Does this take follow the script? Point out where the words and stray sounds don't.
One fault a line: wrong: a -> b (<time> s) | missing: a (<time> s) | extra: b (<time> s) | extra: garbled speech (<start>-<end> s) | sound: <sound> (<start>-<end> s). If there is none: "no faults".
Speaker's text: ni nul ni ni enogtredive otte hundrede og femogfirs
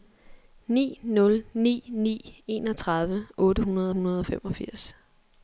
extra: hundrede (3.9 s)